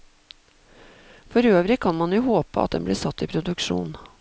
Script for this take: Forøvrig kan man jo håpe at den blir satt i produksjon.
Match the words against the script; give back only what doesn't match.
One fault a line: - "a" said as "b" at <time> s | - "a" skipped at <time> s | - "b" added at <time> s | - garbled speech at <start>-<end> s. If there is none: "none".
none